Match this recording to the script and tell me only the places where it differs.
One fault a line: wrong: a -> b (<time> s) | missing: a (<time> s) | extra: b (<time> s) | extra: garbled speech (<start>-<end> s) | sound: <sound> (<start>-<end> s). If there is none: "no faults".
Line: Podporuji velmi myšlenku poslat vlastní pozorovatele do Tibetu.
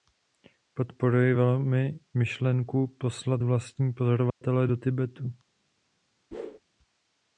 sound: dropout (4.3-4.4 s)
sound: whoosh (6.3-6.6 s)